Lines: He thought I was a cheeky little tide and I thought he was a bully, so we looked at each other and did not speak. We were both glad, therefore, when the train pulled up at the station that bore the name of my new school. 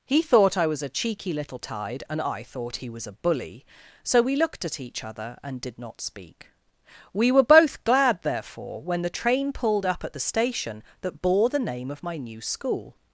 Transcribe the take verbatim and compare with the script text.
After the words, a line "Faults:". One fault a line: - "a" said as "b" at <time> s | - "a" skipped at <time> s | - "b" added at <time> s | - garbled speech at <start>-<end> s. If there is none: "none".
He thought I was a cheeky little tide and I thought he was a bully, so we looked at each other and did not speak. We were both glad, therefore, when the train pulled up at the station that bore the name of my new school.
Faults:
none